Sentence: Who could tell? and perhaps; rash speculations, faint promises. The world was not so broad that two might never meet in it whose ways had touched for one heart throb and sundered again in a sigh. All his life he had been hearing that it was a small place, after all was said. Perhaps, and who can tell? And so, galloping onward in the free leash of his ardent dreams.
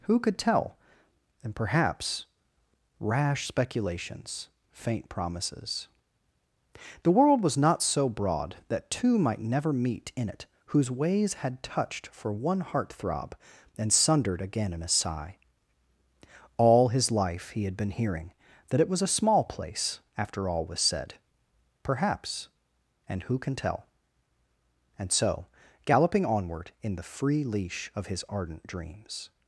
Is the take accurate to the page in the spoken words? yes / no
yes